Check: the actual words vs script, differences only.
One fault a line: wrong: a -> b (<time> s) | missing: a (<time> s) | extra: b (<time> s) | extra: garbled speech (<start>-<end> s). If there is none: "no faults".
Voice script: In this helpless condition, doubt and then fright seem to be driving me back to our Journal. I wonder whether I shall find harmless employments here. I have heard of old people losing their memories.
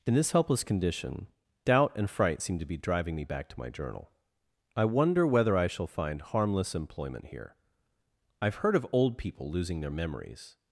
missing: then (2.1 s)
wrong: our -> my (3.6 s)
wrong: employments -> employment (6.8 s)